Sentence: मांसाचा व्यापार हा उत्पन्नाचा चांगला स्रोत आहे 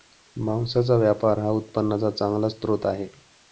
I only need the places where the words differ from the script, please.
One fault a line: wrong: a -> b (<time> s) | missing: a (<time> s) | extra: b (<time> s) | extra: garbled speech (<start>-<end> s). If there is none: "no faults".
no faults